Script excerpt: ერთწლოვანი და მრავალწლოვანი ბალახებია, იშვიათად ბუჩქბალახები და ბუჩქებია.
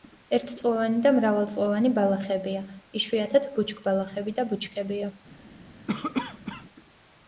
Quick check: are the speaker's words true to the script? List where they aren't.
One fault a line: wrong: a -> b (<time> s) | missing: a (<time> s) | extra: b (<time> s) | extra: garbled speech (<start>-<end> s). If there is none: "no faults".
no faults